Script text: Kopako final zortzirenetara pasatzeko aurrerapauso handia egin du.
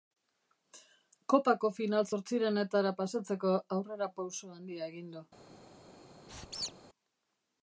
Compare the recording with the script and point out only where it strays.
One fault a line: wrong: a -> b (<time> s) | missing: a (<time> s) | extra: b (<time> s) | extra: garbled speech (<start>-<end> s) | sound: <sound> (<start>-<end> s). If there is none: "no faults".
sound: squeak (6.3-6.7 s)